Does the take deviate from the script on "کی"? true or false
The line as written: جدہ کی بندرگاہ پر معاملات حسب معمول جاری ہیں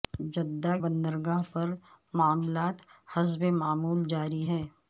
true